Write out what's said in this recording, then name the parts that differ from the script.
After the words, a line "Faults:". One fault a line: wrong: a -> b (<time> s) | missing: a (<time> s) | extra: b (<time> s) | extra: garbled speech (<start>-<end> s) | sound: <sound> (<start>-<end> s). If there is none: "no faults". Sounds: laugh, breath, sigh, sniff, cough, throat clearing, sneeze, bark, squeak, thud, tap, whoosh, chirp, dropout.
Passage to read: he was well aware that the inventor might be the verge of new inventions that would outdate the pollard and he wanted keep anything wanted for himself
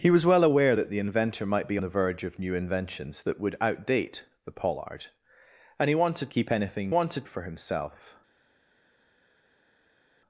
he was well aware that the inventor might be the verge of new inventions that would outdate the pollard and he wanted keep anything wanted for himself
Faults:
no faults